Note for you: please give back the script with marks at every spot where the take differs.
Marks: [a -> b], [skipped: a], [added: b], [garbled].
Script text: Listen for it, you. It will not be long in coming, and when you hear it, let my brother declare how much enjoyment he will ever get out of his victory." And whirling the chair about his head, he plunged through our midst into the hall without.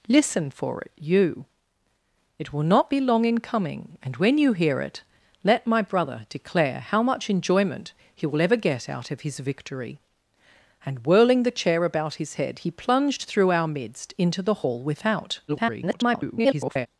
Listen for it, you. It will not be long in coming, and when you hear it, let my brother declare how much enjoyment he will ever get out of his victory." And whirling the chair about his head, he plunged through our midst into the hall without. [garbled]